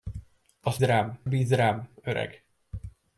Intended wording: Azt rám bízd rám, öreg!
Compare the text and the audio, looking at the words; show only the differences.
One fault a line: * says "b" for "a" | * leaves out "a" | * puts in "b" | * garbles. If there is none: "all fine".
all fine